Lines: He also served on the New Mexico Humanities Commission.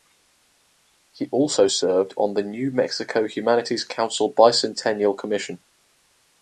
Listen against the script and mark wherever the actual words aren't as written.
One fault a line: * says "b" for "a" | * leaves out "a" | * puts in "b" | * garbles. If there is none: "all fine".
* puts in "Council Bicentennial"